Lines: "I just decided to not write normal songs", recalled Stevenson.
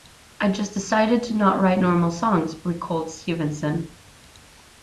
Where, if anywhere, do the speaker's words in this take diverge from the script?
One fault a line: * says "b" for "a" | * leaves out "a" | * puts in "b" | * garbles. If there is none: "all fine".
all fine